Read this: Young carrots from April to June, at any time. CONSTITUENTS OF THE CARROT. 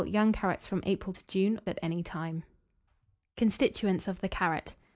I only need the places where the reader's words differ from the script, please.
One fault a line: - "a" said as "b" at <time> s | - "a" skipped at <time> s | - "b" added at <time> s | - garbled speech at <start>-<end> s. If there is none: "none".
none